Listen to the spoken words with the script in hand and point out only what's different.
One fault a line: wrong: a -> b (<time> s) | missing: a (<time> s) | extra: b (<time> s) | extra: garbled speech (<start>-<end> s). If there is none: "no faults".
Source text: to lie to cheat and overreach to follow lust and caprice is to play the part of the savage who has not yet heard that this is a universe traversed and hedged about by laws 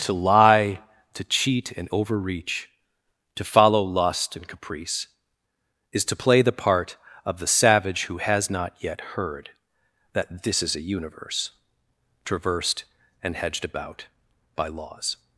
no faults